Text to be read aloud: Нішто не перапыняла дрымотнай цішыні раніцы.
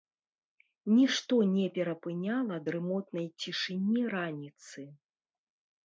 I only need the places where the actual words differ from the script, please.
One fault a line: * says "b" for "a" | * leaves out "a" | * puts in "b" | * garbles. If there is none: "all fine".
all fine